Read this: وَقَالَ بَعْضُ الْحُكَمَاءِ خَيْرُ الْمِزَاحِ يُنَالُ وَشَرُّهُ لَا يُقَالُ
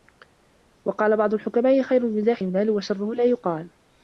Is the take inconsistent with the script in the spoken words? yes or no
no